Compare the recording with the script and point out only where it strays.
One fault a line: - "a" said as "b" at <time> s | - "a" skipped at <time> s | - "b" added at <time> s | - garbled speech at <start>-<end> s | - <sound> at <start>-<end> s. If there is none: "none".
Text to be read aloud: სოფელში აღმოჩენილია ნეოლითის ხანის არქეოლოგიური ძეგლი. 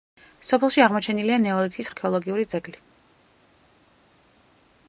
- "ხანის" skipped at 1.9 s